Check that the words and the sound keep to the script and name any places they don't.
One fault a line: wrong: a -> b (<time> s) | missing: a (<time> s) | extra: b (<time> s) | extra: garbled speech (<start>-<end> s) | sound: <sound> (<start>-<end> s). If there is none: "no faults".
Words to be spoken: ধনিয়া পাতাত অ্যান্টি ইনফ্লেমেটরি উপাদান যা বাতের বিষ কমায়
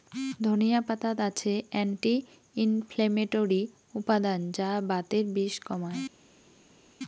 extra: আছে (1.3 s)